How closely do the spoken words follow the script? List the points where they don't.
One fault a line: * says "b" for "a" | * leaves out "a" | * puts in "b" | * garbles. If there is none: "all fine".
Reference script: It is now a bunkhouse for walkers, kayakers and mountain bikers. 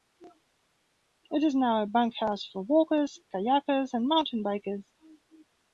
all fine